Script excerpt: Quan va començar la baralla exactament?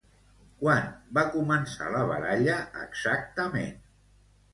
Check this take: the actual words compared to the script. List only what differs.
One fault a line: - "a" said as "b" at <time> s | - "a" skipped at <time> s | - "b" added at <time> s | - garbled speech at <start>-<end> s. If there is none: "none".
none